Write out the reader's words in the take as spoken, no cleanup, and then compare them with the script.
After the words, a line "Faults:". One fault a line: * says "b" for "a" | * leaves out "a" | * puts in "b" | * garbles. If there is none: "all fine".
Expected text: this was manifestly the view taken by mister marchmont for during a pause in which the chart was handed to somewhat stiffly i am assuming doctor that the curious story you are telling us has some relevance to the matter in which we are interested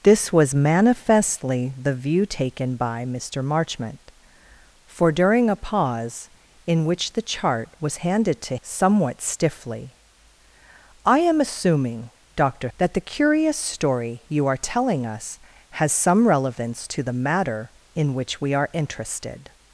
this was manifestly the view taken by mister marchmont for during a pause in which the chart was handed to somewhat stiffly i am assuming doctor that the curious story you are telling us has some relevance to the matter in which we are interested
Faults:
all fine